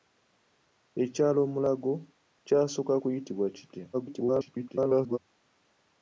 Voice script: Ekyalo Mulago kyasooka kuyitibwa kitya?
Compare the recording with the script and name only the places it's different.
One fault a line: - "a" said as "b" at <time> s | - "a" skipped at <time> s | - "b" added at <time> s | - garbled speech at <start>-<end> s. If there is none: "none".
- garbled speech at 3.9-5.2 s